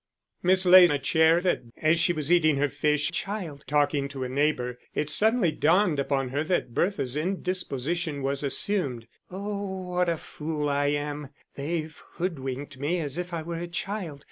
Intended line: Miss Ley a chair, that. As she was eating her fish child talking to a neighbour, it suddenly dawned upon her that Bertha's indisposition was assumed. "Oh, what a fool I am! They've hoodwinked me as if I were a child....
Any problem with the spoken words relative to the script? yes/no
no